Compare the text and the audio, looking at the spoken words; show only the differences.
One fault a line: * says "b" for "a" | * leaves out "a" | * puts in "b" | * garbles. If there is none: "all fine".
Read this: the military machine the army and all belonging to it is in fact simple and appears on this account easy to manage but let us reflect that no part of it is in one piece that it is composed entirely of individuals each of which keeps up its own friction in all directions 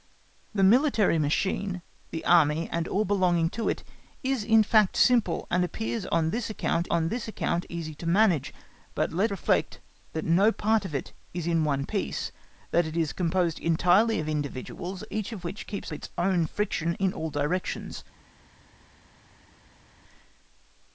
* puts in "on this account"
* leaves out "us"
* leaves out "up"